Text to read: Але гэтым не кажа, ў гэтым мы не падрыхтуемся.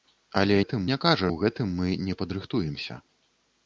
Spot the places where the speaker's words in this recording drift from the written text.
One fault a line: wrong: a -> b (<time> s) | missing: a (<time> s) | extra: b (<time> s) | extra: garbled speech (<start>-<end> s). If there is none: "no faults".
no faults